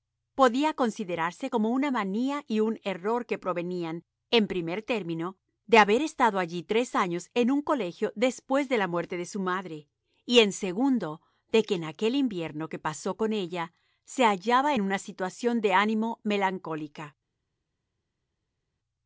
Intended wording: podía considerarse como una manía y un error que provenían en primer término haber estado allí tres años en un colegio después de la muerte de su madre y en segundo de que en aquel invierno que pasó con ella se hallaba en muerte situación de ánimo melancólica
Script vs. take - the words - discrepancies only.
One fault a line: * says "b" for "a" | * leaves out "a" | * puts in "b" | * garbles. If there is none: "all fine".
* puts in "de"
* says "una" for "muerte"